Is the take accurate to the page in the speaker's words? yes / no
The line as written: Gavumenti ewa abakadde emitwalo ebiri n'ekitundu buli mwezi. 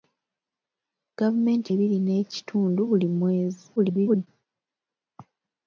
no